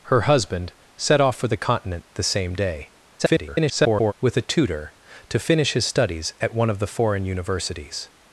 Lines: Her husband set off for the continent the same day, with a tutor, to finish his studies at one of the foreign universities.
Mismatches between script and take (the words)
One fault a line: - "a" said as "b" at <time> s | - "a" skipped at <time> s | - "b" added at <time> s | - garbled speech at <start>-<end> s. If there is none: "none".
- garbled speech at 3.2-4.1 s